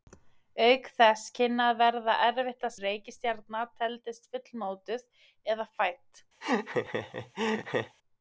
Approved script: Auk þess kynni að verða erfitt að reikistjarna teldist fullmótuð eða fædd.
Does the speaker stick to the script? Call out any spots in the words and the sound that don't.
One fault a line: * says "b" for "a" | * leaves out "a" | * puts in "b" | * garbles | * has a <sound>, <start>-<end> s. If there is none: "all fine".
* has a laugh, 6.4-8.0 s